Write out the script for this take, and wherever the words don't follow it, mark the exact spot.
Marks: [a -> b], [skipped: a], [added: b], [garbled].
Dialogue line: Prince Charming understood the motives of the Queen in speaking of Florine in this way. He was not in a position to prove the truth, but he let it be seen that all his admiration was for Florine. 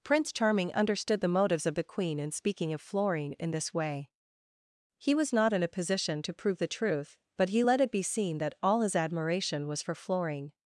Prince Charming understood the motives of the Queen in speaking of Florine in this way. He was not in a position to prove the truth, but he let it be seen that all his admiration was for Florine.